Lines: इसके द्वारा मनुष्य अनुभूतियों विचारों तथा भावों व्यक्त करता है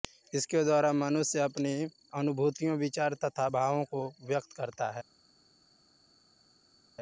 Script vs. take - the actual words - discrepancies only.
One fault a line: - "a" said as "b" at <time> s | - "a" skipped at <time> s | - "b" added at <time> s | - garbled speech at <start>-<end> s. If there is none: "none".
- "अपनी" added at 1.4 s
- "को" added at 3.9 s